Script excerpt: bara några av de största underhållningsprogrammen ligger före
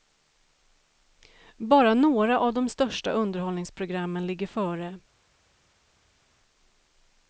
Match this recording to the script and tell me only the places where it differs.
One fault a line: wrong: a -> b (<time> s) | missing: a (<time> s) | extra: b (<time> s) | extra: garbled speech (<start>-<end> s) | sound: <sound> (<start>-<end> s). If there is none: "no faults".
no faults